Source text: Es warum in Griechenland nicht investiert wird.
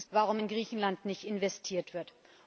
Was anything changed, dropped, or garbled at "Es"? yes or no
no